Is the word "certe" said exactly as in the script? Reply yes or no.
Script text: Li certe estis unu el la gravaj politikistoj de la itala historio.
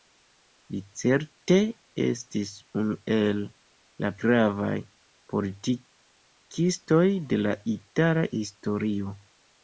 yes